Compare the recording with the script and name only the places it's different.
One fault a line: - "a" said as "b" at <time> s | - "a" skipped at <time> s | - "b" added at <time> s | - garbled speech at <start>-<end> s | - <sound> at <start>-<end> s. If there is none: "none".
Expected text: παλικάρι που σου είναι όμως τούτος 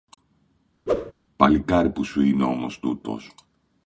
- whoosh at 0.9-1.1 s